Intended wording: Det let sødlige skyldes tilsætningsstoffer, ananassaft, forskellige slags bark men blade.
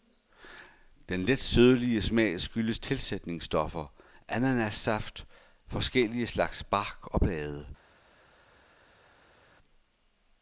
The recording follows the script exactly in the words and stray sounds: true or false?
false